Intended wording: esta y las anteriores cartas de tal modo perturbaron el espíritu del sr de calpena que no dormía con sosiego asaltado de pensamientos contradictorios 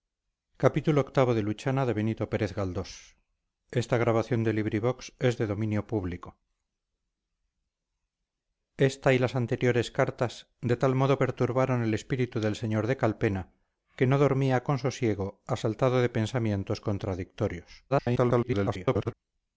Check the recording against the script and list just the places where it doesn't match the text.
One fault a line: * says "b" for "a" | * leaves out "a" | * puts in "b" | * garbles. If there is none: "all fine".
* garbles